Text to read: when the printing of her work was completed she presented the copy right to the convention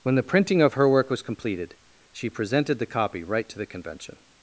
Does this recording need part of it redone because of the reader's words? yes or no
no